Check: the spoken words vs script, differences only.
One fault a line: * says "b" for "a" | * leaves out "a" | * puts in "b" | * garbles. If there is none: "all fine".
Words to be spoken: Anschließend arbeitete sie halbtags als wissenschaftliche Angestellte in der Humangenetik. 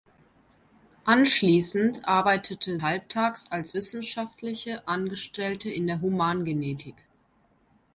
* leaves out "sie"